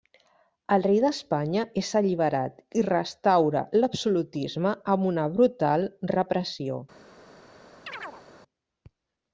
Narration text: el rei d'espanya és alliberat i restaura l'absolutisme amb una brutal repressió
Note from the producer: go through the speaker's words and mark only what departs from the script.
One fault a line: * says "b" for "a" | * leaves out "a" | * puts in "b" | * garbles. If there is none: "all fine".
all fine